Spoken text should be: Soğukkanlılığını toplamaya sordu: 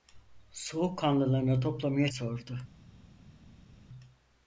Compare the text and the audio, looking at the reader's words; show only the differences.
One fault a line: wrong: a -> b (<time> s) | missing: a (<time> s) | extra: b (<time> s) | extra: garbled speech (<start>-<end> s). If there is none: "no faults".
no faults